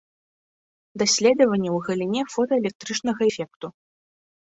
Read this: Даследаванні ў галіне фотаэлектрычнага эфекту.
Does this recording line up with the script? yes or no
yes